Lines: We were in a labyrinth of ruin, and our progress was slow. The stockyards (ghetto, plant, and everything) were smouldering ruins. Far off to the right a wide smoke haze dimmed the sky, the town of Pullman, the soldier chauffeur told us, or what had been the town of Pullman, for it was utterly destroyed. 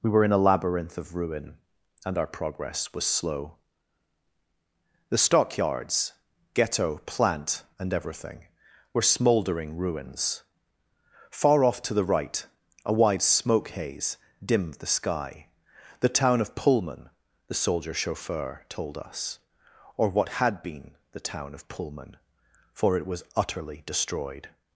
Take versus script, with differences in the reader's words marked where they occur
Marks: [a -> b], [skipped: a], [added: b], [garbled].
We were in a labyrinth of ruin, and our progress was slow. The stockyards (ghetto, plant, and everything) were smouldering ruins. Far off to the right a wide smoke haze dimmed the sky, the town of Pullman, the soldier chauffeur told us, or what had been the town of Pullman, for it was utterly destroyed.